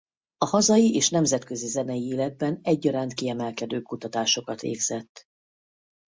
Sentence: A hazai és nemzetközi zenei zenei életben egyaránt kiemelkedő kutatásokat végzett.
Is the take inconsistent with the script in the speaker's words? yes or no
yes